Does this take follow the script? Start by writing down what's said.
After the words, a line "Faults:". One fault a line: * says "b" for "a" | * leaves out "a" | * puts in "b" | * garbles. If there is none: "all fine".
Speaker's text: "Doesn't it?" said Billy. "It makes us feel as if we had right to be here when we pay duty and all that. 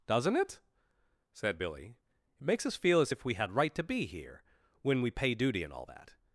"Doesn't it?" said Billy. "It makes us feel as if we had right to be here when we pay duty and all that.
Faults:
all fine